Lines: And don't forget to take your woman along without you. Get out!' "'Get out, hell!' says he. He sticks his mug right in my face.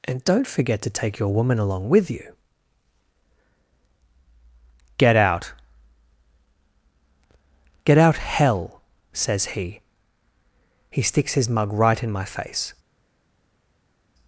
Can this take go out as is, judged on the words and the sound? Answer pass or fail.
fail